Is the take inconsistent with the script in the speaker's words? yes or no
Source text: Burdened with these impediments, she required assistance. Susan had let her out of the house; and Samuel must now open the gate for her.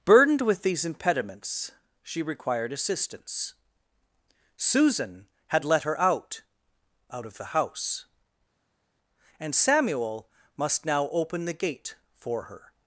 yes